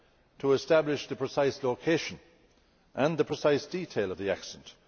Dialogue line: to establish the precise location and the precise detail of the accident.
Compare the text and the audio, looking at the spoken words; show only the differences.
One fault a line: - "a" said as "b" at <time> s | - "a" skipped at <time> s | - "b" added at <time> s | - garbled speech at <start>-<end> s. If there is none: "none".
none